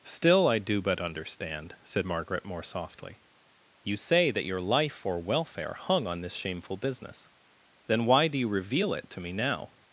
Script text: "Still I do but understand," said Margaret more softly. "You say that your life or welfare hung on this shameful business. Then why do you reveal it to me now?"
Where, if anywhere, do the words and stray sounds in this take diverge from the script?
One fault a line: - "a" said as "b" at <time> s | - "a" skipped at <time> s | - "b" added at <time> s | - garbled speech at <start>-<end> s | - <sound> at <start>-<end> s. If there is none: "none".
none